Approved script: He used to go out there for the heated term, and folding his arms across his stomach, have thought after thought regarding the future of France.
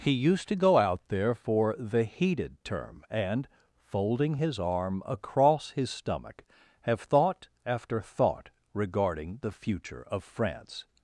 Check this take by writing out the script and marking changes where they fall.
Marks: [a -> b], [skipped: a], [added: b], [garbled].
He used to go out there for the heated term, and folding his [arms -> arm] across his stomach, have thought after thought regarding the future of France.